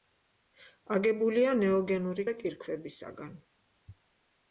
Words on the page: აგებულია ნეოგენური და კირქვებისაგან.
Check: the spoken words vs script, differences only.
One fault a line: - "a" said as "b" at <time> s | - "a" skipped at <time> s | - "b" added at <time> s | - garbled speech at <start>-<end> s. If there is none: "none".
none